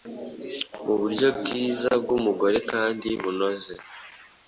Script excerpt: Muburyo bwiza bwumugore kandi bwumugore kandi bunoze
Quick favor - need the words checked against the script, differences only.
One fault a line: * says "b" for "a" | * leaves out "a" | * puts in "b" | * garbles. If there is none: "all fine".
* leaves out "bwumugore kandi"